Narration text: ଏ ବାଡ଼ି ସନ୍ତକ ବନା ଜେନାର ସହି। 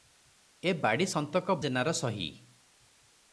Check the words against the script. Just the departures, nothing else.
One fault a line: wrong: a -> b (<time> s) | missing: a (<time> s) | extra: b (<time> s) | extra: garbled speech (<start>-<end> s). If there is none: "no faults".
missing: ବନା (1.6 s)